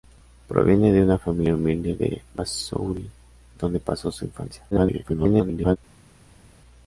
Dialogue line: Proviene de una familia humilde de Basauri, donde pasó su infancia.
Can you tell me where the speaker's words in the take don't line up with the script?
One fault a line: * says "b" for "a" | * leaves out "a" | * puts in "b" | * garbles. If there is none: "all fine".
* garbles